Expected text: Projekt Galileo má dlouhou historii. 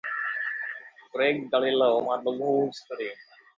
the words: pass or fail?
pass